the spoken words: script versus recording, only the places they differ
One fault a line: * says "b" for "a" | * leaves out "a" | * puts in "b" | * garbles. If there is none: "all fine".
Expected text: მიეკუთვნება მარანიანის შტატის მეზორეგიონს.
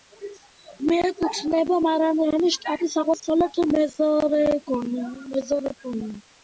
* puts in "აღმოსავლეთ"